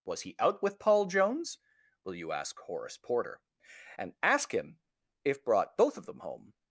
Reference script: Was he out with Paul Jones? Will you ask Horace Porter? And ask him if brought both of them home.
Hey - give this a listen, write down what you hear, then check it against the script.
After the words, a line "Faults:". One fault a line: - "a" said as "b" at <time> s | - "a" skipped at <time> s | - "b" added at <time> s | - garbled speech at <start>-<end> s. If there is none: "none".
Was he out with Paul Jones? Will you ask Horace Porter? And ask him if brought both of them home.
Faults:
none